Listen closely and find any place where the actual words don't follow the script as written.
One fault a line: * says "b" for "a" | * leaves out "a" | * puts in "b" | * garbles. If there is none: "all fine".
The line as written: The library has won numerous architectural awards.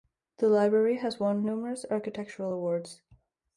all fine